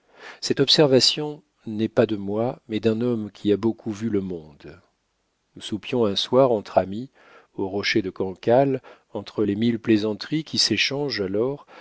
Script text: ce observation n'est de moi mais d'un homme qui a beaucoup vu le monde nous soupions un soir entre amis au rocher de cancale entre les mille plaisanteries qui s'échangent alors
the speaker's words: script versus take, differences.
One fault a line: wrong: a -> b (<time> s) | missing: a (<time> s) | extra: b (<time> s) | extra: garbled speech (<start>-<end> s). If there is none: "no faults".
wrong: ce -> cette (0.4 s)
extra: pas (1.9 s)